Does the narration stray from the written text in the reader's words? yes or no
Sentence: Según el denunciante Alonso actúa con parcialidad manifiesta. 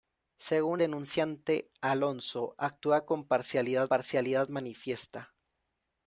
yes